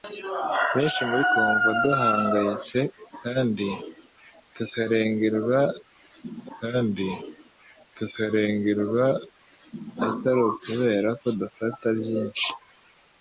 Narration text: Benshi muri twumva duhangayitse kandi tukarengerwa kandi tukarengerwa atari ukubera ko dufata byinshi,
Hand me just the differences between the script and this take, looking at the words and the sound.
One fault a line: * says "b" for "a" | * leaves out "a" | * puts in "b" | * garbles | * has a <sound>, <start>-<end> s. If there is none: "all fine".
all fine